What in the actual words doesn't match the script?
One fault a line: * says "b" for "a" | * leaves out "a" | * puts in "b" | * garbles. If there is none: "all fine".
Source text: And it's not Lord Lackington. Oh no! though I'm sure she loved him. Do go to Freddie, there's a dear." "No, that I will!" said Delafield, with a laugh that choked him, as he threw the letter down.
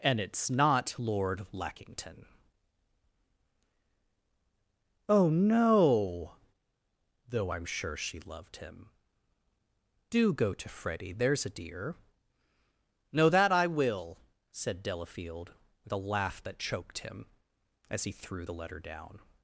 all fine